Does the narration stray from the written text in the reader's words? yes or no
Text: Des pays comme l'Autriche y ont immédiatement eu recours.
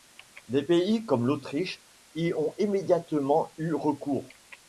no